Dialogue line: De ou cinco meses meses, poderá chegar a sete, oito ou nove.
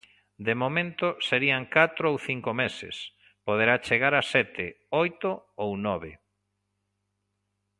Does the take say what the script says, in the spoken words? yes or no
no